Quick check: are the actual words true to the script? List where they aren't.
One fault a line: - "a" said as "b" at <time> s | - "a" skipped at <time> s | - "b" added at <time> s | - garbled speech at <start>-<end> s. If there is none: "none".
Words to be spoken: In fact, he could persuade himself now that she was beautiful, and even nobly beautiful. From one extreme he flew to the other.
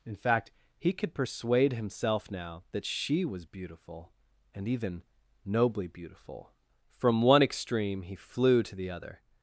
none